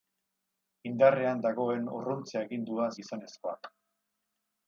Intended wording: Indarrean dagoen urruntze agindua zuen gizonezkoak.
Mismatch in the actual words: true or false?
true